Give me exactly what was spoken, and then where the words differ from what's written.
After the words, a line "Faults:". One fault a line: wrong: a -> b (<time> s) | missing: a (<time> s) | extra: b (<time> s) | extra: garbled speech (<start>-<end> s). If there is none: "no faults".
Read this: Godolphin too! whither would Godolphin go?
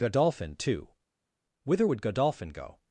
Godolphin too! whither would Godolphin go?
Faults:
no faults